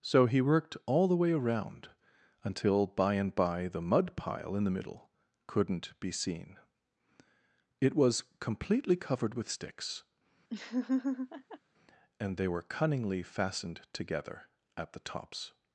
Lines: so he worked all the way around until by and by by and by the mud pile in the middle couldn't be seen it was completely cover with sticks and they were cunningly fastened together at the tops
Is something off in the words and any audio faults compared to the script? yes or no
yes